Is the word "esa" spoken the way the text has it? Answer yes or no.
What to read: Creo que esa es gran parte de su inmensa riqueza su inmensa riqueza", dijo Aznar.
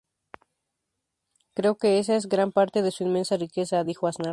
yes